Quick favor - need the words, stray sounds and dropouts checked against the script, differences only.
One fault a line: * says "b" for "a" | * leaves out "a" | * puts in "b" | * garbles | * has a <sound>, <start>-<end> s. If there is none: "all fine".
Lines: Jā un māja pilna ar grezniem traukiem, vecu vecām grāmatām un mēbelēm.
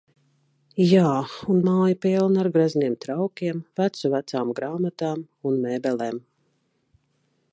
all fine